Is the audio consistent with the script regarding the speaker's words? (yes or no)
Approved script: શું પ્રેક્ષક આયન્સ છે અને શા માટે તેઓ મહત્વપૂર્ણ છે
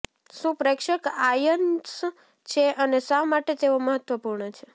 yes